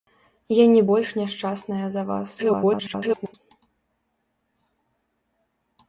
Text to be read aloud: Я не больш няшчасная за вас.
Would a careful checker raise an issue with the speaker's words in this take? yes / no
yes